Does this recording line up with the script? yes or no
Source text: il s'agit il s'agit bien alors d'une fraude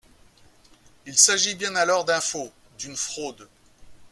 no